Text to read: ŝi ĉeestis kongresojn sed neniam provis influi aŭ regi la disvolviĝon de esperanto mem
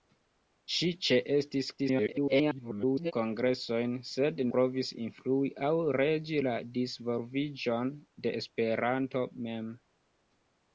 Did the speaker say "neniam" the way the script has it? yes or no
no